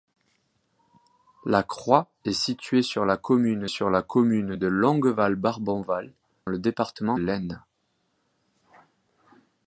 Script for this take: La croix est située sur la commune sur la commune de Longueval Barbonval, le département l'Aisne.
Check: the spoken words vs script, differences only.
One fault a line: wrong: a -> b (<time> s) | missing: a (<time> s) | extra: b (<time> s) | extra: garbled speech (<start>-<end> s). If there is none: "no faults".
no faults